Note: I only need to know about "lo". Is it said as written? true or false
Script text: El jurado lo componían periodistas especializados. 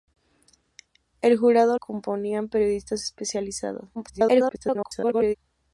false